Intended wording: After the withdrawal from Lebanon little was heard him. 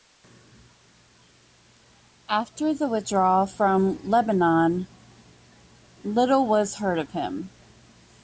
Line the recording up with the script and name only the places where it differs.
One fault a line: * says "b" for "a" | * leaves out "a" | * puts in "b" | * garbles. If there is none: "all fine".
* puts in "of"